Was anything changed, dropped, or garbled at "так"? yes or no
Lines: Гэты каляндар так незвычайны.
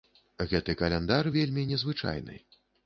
yes